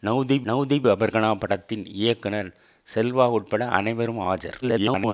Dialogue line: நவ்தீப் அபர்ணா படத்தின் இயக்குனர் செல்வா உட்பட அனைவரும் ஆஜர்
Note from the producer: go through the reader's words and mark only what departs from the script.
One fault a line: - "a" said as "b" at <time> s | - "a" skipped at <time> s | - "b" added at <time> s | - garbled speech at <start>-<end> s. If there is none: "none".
- "நவ்தீப்" added at 0.5 s
- garbled speech at 4.6-5.1 s